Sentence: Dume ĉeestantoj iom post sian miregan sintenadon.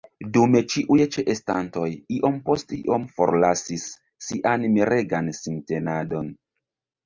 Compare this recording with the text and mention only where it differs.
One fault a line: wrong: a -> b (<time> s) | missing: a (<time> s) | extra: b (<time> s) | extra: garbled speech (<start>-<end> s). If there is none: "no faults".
extra: ĉiuj (0.8 s)
extra: iom forlasis (2.8 s)